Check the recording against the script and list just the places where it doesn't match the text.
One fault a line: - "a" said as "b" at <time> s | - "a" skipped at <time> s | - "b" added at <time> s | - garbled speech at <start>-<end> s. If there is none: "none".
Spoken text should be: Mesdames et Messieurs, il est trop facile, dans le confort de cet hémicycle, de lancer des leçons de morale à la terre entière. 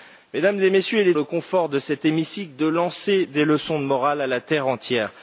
- "trop facile dans" skipped at 1.1 s